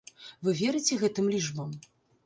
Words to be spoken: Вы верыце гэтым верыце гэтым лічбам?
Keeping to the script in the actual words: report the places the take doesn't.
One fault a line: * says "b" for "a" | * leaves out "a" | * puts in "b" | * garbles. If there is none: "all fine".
* leaves out "верыце гэтым"